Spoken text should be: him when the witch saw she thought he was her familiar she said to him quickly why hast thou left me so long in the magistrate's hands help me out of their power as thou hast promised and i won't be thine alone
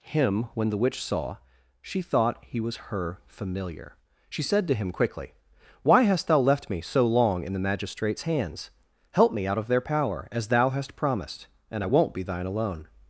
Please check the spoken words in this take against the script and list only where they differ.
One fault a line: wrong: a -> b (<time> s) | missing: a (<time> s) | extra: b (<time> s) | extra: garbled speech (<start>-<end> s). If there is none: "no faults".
no faults